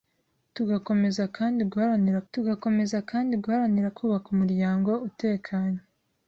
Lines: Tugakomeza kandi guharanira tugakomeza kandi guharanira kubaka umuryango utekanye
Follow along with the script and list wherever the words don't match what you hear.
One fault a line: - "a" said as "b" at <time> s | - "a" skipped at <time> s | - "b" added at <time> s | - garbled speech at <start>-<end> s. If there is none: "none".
none